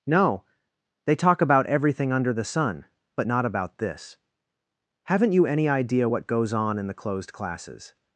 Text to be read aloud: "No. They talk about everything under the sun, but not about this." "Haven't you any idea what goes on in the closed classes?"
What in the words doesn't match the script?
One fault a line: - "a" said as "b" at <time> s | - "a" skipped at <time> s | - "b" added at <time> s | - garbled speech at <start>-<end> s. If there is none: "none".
none